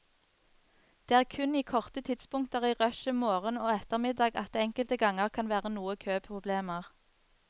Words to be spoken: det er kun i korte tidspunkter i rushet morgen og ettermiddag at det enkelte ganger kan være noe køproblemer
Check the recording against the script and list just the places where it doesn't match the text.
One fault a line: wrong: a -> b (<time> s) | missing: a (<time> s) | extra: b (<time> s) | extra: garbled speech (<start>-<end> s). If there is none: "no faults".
no faults